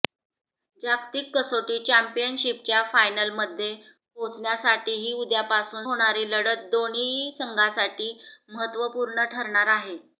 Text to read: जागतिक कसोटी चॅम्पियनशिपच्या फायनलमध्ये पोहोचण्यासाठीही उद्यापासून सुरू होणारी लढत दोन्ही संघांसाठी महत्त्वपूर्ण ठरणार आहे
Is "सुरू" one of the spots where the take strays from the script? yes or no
yes